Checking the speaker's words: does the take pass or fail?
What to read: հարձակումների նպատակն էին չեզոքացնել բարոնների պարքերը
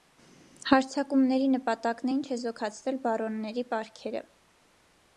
pass